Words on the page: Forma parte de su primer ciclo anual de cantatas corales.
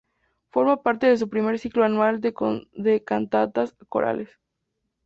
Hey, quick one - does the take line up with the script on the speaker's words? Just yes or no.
yes